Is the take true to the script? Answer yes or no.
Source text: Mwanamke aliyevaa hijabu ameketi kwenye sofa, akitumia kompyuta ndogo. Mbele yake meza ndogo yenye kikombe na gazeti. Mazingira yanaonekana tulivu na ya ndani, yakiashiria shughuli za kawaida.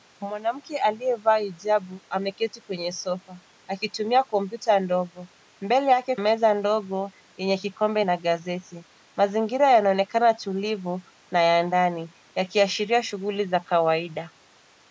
yes